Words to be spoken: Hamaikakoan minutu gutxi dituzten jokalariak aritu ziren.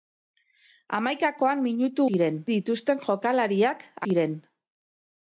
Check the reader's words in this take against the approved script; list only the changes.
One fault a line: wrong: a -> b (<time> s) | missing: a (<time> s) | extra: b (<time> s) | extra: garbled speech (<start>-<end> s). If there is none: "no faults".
wrong: gutxi -> ziren (2.1 s)
missing: aritu (3.9 s)